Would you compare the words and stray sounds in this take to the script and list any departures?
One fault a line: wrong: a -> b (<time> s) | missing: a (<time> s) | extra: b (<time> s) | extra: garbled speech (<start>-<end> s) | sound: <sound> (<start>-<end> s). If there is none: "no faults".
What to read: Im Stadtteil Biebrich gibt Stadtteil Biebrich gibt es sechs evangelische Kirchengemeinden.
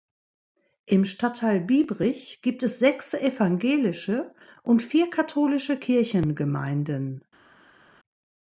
wrong: Stadtteil Biebrich gibt es sechs evangelische -> es sechs evangelische und vier katholische (2.6 s)